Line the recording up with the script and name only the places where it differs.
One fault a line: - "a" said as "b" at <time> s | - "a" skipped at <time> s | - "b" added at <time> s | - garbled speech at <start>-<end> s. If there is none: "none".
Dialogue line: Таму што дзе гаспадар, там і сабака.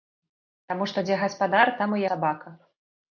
none